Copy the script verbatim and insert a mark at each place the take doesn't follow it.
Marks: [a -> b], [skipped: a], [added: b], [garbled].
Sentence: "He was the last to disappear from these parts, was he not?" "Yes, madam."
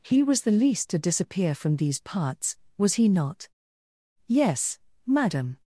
"He was the [last -> least] to disappear from these parts, was he not?" "Yes, madam."